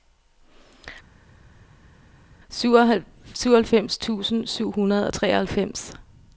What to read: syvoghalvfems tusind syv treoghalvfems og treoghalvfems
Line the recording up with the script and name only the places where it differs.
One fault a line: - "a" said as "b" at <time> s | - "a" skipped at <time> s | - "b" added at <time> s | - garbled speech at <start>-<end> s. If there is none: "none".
- "treoghalvfems" said as "hundrede" at 4.7 s